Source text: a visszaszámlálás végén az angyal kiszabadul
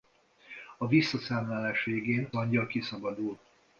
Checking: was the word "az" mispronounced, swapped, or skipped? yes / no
yes